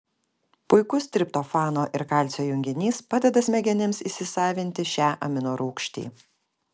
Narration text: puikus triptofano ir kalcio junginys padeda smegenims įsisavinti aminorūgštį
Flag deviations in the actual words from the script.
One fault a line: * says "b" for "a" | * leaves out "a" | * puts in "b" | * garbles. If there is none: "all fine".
* puts in "šią"